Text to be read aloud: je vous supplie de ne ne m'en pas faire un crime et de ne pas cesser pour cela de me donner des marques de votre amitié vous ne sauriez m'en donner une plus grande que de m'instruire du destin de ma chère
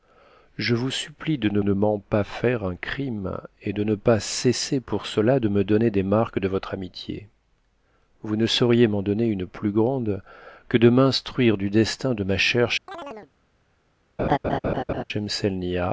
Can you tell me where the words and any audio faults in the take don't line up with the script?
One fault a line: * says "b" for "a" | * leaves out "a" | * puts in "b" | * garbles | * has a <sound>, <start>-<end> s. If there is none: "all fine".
* has a chirp, 12.9-13.3 s
* has a laugh, 14.2-15.0 s